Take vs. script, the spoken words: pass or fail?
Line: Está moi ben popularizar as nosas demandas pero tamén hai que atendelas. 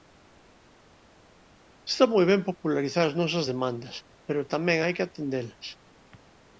pass